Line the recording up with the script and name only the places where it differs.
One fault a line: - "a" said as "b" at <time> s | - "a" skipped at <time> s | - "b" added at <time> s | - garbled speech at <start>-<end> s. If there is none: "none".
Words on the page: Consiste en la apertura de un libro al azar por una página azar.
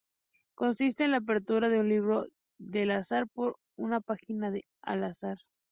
- "al" added at 4.8 s